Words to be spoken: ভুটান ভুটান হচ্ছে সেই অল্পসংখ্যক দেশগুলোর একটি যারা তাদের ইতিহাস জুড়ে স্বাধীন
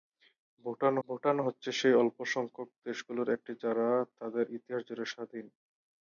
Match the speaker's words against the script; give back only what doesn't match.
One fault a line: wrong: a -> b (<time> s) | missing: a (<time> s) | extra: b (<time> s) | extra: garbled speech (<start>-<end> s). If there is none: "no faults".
no faults